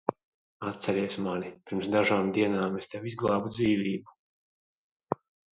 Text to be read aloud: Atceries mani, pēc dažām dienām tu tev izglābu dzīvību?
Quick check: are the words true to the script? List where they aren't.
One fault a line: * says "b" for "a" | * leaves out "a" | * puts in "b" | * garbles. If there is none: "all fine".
* says "pirms" for "pēc"
* says "es" for "tu"